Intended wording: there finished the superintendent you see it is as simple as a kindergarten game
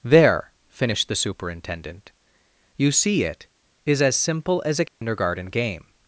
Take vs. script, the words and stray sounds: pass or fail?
fail